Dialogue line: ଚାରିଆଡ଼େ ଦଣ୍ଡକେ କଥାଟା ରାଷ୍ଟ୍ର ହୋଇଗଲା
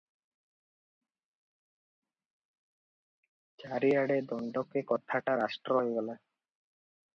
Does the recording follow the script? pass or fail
pass